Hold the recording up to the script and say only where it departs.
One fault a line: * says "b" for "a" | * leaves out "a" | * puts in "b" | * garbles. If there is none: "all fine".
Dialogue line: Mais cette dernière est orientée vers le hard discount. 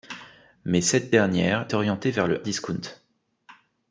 * leaves out "est"
* leaves out "hard"